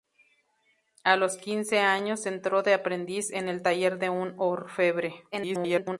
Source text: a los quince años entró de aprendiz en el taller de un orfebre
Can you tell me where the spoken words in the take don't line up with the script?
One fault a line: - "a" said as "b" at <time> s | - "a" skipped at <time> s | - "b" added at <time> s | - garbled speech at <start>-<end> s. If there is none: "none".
- garbled speech at 5.3-6.0 s